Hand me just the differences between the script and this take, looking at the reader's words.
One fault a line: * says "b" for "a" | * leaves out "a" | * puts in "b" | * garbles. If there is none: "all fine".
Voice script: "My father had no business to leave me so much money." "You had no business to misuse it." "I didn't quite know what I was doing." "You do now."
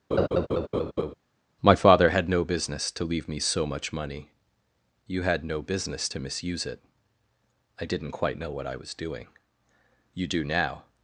all fine